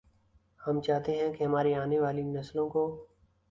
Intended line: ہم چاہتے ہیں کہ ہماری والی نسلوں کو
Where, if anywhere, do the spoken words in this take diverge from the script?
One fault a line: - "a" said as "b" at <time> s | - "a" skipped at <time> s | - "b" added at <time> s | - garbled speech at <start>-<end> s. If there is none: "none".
- "آنے" added at 1.8 s